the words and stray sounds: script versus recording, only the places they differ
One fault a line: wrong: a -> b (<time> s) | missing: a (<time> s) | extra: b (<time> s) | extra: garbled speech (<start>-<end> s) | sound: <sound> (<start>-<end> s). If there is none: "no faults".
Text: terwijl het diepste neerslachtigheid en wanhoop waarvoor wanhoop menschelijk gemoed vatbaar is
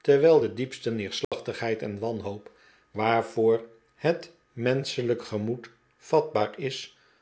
wrong: het -> de (0.4 s)
sound: dropout (1.2-1.3 s)
wrong: wanhoop -> het (4.0 s)